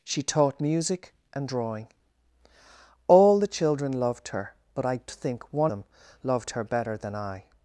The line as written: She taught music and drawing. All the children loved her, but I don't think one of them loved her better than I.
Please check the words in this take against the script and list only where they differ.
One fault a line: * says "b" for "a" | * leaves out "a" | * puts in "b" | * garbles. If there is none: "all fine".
* leaves out "don't"
* leaves out "of"